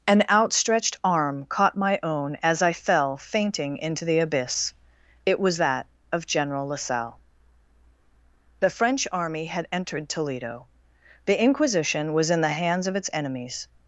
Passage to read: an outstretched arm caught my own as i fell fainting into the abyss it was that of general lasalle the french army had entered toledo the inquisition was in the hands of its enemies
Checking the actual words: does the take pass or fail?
pass